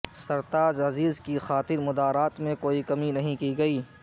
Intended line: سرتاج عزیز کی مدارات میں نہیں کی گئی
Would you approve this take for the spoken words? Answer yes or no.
no